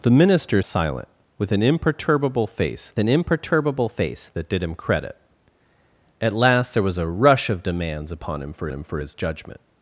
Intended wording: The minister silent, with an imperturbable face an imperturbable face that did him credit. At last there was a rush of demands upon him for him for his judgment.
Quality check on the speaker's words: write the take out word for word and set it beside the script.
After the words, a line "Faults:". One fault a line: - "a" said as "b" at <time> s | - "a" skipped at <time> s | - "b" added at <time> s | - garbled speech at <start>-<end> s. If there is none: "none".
The minister silent, with an imperturbable face an imperturbable face that did him credit. At last there was a rush of demands upon him for him for his judgment.
Faults:
none